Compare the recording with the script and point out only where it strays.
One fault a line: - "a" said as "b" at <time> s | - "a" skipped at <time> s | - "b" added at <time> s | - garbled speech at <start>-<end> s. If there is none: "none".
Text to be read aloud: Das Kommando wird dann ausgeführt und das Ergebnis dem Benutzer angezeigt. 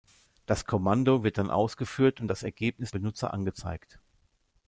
- "dem" skipped at 2.9 s